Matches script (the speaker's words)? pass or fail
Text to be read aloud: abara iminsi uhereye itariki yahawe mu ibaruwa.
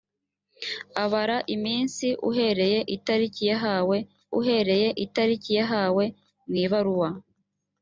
fail